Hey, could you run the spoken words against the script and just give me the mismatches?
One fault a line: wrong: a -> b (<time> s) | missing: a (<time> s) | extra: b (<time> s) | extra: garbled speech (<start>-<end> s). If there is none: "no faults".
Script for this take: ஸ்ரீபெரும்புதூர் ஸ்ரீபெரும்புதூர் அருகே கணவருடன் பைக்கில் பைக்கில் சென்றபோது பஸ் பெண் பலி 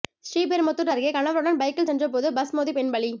missing: ஸ்ரீபெரும்புதூர் (0.9 s)
missing: பைக்கில் (1.9 s)
extra: மோதி (2.5 s)